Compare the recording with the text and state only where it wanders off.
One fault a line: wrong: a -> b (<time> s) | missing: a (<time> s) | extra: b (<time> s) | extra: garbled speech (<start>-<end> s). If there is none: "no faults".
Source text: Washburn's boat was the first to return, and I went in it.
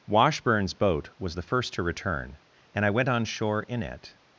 extra: on shore (3.1 s)